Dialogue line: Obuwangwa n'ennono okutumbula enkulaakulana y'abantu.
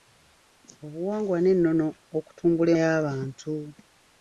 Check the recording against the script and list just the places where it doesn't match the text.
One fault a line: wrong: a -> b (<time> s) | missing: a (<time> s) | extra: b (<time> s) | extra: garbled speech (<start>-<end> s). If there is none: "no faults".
missing: enkulaakulana (2.7 s)